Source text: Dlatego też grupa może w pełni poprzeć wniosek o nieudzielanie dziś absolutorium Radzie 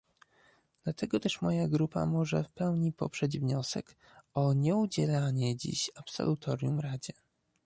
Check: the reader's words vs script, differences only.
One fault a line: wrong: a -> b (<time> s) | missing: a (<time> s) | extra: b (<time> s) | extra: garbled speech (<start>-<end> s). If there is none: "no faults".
extra: moja (1.4 s)